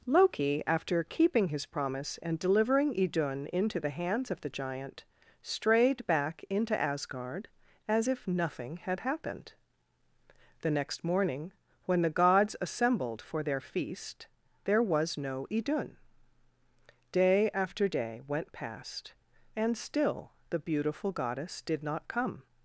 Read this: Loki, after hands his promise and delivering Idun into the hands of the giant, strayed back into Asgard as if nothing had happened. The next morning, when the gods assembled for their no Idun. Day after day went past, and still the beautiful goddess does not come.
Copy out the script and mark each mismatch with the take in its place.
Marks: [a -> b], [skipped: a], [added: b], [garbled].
Loki, after [hands -> keeping] his promise and delivering Idun into the hands of the giant, strayed back into Asgard as if nothing had happened. The next morning, when the gods assembled for their [added: feast there was] no Idun. Day after day went past, and still the beautiful goddess [does -> did] not come.